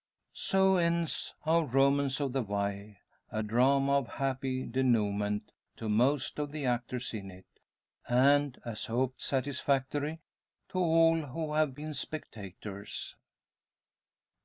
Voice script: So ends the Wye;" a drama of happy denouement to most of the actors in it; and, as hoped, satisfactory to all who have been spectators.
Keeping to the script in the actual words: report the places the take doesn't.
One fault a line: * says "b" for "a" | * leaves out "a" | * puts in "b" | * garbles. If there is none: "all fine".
* puts in "our Romance of"